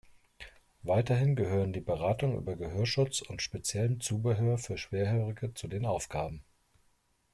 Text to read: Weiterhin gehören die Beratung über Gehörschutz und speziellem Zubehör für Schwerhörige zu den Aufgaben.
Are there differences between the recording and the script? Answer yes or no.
no